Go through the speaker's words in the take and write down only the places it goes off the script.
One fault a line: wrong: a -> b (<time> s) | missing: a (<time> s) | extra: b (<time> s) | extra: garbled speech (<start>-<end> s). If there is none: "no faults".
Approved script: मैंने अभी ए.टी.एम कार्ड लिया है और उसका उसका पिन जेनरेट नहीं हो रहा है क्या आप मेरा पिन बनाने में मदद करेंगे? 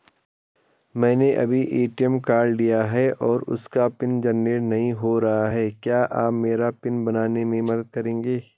missing: उसका (3.9 s)